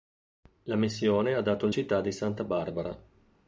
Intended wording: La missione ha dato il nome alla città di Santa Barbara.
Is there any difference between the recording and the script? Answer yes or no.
yes